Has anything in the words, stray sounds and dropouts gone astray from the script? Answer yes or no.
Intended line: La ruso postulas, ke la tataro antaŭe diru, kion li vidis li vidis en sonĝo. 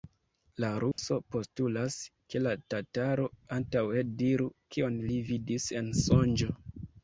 yes